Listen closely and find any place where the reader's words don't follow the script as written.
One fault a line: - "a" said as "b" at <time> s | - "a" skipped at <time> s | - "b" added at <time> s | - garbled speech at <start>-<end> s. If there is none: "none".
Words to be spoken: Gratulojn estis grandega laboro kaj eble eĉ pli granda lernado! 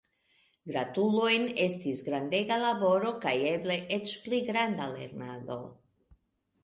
none